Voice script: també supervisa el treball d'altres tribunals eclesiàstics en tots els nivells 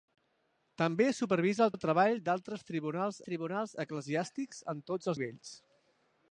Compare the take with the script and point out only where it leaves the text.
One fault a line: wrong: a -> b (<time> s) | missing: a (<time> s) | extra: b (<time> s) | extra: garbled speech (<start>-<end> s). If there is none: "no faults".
extra: el (1.7 s)
extra: tribunals (3.3 s)
missing: els (5.1 s)